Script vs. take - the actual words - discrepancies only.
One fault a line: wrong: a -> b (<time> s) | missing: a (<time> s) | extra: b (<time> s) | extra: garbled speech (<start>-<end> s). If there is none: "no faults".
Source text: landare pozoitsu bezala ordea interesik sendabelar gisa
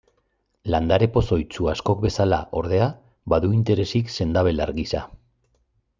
extra: askok (1.7 s)
extra: badu (3.4 s)